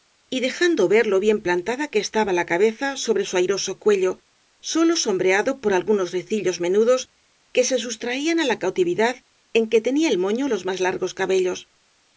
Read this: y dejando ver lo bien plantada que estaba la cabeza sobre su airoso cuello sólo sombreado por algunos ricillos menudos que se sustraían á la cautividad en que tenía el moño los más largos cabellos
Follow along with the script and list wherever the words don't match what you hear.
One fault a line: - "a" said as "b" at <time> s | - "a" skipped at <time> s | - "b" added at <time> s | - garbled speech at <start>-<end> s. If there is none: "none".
none